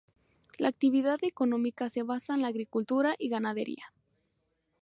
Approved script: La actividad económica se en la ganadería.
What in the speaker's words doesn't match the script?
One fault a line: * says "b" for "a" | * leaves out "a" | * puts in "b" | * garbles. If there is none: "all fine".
* puts in "basa"
* puts in "agricultura y"